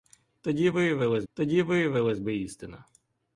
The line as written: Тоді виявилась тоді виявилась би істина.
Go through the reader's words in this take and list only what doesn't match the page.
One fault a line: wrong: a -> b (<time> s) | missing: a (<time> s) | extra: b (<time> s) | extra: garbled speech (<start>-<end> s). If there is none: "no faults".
no faults